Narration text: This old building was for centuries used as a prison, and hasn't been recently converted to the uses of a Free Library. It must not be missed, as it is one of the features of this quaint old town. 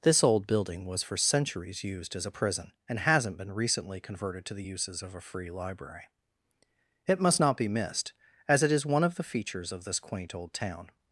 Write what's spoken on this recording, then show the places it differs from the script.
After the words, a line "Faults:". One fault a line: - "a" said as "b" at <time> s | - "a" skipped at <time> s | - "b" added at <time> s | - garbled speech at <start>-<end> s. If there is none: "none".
This old building was for centuries used as a prison, and hasn't been recently converted to the uses of a Free Library. It must not be missed, as it is one of the features of this quaint old town.
Faults:
none